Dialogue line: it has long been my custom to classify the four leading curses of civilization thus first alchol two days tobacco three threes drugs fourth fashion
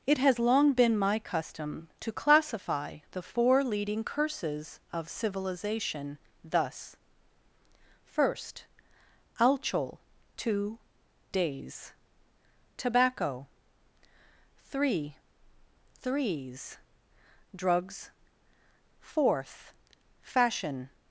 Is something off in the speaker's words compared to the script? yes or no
no